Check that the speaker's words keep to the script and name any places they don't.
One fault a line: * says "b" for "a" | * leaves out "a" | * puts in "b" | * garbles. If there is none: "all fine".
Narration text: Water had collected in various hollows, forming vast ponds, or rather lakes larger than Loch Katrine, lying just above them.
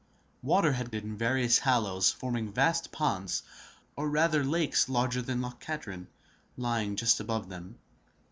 * leaves out "collected"